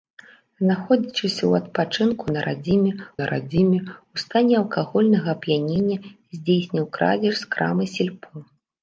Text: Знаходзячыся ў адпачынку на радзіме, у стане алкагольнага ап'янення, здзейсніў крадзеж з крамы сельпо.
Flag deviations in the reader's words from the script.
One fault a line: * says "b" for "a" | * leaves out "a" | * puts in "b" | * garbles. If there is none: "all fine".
* puts in "на радзіме"